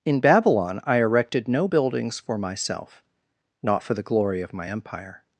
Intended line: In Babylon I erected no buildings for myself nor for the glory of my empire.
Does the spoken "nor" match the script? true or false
false